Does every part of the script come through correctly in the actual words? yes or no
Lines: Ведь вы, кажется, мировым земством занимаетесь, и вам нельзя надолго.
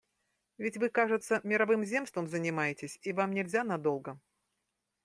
yes